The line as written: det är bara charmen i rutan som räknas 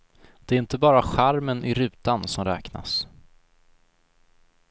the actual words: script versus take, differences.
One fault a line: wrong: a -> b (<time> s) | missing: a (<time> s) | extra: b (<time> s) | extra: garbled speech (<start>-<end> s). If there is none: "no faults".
extra: inte (0.6 s)